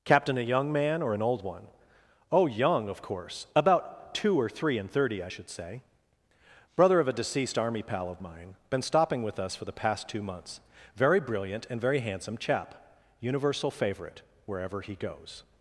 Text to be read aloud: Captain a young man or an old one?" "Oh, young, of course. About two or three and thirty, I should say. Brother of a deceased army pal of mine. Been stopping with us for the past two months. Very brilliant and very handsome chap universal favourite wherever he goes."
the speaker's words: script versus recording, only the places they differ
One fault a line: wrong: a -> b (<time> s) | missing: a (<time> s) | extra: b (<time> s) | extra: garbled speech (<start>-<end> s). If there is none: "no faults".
no faults